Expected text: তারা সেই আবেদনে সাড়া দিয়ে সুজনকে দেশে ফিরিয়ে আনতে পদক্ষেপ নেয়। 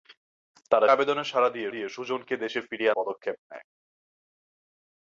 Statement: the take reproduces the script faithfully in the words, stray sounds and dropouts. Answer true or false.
false